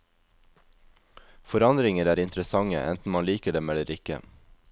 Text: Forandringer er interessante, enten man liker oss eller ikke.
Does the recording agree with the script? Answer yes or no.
no